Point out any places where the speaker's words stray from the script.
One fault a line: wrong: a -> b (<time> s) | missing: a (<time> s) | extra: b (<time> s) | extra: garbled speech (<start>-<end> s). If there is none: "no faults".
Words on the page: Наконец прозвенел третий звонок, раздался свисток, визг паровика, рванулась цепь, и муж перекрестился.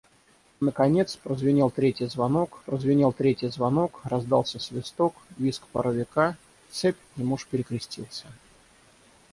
extra: прозвенел третий звонок (2.6 s)
missing: рванулась (6.4 s)